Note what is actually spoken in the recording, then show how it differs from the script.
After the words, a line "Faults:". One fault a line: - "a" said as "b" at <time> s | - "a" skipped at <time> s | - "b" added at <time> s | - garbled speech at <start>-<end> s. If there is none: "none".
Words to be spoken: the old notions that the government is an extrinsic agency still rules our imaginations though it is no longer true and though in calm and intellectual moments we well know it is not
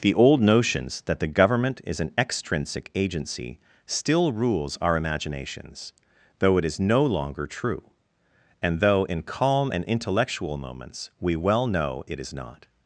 the old notions that the government is an extrinsic agency still rules our imaginations though it is no longer true and though in calm and intellectual moments we well know it is not
Faults:
none